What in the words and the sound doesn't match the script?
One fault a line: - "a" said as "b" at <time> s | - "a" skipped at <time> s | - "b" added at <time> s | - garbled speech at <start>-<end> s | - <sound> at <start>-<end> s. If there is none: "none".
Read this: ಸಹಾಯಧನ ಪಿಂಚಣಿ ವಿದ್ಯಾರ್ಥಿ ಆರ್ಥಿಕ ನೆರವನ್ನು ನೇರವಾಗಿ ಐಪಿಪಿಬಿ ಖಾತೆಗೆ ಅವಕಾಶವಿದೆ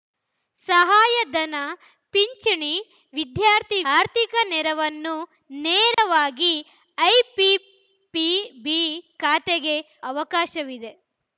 - dropout at 5.9-6.0 s